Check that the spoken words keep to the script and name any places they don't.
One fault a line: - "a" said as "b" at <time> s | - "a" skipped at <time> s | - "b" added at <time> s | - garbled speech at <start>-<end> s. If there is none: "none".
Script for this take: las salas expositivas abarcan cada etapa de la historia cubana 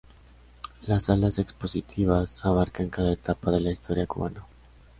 none